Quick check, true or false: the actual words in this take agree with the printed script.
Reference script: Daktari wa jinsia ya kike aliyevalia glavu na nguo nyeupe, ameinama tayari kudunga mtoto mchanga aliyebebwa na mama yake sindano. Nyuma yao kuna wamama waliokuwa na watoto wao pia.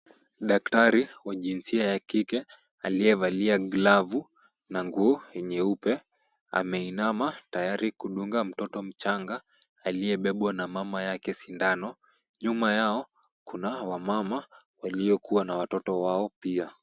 true